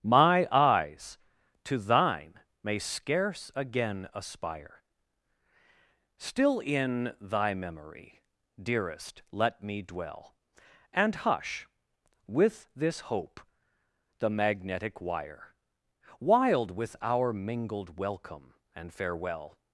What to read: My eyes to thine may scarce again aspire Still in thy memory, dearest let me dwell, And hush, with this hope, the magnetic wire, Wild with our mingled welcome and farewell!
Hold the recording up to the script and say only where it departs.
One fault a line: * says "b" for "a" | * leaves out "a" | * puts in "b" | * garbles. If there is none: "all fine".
all fine